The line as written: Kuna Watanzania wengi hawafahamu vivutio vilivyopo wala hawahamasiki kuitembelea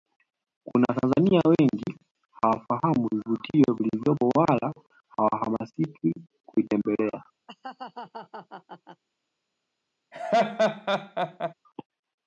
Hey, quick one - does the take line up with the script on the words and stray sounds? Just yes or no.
no